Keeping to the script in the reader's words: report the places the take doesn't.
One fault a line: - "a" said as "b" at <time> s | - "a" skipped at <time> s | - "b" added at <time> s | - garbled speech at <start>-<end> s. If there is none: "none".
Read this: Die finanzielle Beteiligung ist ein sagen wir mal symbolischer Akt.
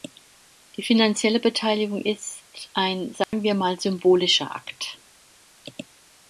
none